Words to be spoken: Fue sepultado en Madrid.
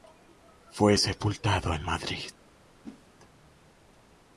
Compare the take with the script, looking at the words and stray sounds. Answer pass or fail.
fail